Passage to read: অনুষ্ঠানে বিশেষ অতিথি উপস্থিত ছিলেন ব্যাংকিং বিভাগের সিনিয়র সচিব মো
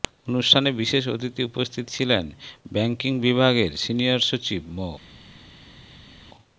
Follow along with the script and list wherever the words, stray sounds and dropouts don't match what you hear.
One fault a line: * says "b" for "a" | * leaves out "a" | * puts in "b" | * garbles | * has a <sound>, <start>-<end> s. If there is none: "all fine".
all fine